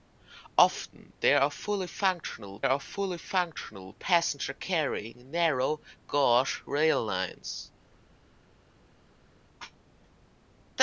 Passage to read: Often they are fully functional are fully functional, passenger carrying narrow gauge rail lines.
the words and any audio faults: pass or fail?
pass